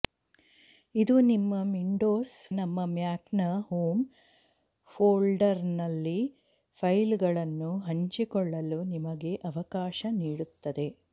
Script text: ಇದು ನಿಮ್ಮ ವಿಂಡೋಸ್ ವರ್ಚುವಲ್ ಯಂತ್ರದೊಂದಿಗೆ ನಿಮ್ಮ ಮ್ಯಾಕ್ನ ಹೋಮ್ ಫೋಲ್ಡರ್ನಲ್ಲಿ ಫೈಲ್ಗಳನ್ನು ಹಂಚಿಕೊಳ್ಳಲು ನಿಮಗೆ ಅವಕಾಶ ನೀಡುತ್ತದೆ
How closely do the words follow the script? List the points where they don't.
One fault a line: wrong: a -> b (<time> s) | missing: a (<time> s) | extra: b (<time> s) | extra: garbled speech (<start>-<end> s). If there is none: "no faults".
missing: ವರ್ಚುವಲ್ ಯಂತ್ರದೊಂದಿಗೆ (2.3 s)